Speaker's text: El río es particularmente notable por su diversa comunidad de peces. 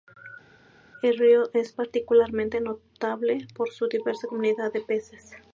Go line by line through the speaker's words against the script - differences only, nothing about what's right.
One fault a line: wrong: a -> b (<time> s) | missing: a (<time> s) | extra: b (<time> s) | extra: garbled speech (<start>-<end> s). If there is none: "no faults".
no faults